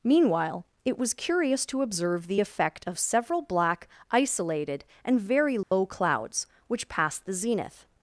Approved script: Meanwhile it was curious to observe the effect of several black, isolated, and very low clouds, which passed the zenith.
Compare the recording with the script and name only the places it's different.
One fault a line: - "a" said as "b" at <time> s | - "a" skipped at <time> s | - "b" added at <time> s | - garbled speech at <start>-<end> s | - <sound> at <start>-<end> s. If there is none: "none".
- dropout at 5.6-5.7 s